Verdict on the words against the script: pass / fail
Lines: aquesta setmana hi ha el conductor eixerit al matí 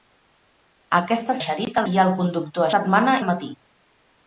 fail